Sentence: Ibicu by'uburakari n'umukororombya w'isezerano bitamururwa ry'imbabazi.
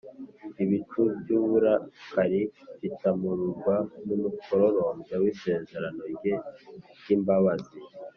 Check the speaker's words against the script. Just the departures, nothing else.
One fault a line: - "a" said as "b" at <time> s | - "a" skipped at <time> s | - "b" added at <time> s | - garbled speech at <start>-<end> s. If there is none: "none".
- "bitamururwa" added at 2.8 s
- "bitamururwa" said as "rye" at 6.2 s